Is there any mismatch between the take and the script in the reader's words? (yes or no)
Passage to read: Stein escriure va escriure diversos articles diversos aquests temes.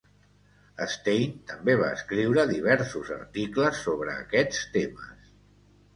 yes